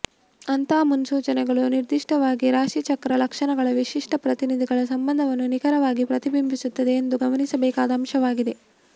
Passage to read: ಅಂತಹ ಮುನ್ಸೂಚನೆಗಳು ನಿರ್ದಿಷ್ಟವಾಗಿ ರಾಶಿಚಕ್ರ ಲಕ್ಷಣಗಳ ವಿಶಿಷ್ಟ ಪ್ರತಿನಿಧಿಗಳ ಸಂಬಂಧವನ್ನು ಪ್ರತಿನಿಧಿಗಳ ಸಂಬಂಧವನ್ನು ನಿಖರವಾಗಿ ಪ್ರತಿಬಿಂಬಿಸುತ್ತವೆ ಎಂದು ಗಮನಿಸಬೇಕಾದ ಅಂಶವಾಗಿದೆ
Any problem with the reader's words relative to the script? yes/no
yes